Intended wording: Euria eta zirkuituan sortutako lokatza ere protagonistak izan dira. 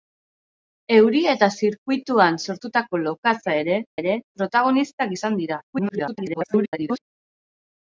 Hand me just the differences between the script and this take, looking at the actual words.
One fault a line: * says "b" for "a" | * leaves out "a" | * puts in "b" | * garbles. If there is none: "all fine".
* puts in "ere"
* garbles